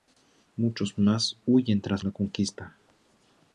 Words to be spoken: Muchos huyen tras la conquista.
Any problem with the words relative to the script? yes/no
yes